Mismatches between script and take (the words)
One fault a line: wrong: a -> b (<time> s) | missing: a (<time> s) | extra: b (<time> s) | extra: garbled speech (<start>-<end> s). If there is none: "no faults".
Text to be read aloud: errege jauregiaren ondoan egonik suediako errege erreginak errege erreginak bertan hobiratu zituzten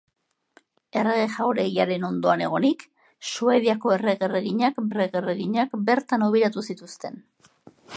no faults